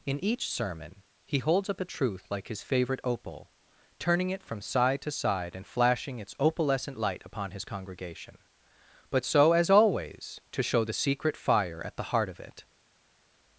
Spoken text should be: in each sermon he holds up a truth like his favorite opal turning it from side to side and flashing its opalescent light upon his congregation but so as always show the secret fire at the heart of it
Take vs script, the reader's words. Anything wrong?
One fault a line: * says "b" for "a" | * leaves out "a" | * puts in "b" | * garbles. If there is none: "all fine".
* puts in "to"